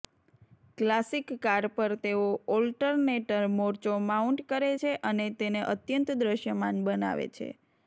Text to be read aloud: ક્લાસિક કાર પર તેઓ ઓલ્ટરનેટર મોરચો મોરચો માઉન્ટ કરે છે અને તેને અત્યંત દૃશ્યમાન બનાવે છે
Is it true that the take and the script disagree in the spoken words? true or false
true